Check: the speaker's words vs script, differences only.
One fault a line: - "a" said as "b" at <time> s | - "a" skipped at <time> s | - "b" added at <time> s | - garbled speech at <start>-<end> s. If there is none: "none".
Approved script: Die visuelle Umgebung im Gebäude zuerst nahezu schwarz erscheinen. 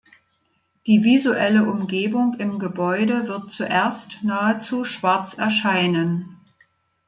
- "wird" added at 3.3 s